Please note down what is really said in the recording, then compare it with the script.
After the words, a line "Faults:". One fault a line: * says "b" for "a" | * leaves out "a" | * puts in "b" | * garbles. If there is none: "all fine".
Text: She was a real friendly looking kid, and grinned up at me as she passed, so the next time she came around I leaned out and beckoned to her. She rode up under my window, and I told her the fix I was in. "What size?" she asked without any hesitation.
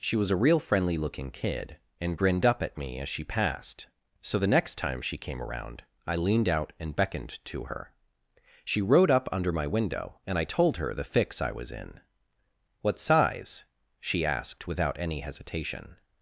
She was a real friendly looking kid, and grinned up at me as she passed, so the next time she came around I leaned out and beckoned to her. She rode up under my window, and I told her the fix I was in. "What size?" she asked without any hesitation.
Faults:
all fine